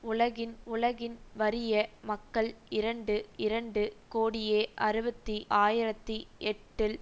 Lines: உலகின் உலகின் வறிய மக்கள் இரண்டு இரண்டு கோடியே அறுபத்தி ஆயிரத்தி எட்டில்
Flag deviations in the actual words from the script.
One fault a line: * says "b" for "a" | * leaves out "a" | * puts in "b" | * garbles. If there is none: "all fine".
all fine